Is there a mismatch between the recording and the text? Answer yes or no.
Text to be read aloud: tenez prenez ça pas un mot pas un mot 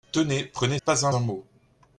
yes